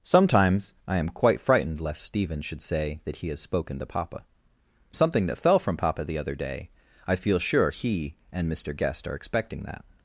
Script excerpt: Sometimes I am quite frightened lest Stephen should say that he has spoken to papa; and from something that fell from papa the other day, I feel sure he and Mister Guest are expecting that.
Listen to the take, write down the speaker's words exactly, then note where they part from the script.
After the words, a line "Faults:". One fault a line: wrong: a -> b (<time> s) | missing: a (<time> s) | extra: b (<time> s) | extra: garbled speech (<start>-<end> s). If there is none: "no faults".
Sometimes I am quite frightened lest Stephen should say that he has spoken to papa; something that fell from papa the other day, I feel sure he and Mister Guest are expecting that.
Faults:
missing: and from (4.2 s)